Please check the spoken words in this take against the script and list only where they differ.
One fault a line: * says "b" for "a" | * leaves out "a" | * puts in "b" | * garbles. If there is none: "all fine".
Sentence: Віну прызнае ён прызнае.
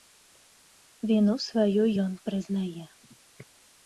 * says "сваю" for "прызнае"